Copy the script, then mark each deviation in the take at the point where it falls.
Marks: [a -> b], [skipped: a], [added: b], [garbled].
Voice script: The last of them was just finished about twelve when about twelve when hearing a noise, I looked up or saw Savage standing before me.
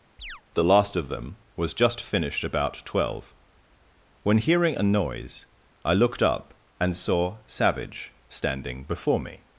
The last of them was just finished about twelve when [skipped: about twelve when] hearing a noise, I looked up [or -> and] saw Savage standing before me.